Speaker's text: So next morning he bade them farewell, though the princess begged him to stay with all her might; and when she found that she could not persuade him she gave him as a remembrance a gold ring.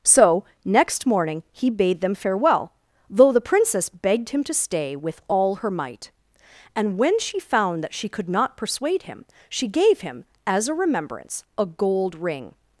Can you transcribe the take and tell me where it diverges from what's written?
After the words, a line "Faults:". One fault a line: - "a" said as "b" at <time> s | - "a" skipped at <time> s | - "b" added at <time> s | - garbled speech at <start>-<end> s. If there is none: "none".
So next morning he bade them farewell, though the princess begged him to stay with all her might; and when she found that she could not persuade him she gave him as a remembrance a gold ring.
Faults:
none